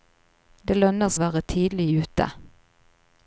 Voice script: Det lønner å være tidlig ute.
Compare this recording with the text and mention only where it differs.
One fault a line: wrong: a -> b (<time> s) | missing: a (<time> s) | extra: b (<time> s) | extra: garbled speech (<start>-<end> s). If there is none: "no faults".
no faults